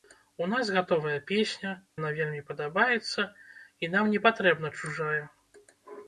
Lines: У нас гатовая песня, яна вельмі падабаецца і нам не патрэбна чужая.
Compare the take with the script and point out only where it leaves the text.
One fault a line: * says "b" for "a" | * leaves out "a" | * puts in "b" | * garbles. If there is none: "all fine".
all fine